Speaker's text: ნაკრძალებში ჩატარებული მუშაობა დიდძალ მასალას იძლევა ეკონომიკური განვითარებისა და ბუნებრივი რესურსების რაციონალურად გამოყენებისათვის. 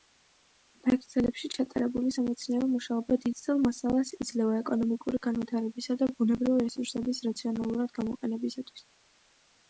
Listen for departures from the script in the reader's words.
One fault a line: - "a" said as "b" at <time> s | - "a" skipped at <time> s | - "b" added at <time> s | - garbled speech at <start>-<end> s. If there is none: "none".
- "სამეცნიერო" added at 2.1 s